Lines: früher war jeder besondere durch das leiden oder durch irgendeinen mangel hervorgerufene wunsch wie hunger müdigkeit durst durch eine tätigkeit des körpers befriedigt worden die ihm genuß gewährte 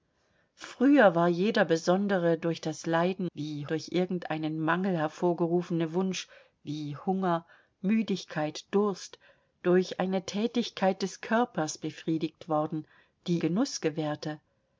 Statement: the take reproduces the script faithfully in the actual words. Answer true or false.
false